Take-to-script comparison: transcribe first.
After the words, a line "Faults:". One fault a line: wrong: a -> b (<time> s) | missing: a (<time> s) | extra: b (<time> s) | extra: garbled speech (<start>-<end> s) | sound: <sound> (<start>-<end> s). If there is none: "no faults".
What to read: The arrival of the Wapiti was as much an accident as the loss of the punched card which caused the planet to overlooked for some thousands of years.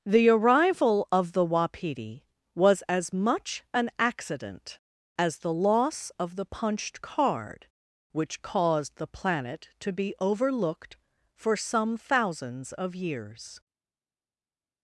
The arrival of the Wapiti was as much an accident as the loss of the punched card which caused the planet to be overlooked for some thousands of years.
Faults:
extra: be (9.9 s)